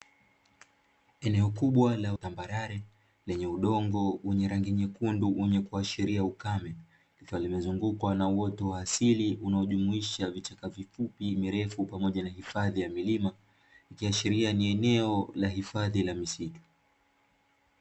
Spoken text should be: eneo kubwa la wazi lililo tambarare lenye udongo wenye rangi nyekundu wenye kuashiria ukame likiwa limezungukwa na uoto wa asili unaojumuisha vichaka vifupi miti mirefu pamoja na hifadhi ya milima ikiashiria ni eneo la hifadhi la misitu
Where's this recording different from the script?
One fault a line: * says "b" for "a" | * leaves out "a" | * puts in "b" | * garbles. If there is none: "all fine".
* leaves out "wazi lililo"
* leaves out "miti"